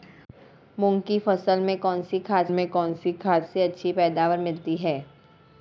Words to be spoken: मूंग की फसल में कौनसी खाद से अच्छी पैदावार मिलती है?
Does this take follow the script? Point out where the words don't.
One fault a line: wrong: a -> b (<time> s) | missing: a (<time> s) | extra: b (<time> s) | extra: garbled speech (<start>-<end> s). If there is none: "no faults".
extra: में कौनसी खाद (2.5 s)